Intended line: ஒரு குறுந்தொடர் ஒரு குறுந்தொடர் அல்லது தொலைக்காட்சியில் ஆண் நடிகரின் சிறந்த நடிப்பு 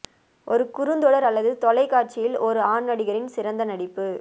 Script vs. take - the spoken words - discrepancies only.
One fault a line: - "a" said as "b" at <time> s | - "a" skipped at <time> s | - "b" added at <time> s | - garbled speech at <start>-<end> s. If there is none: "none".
- "ஒரு குறுந்தொடர்" skipped at 1.3 s
- "ஒரு" added at 2.4 s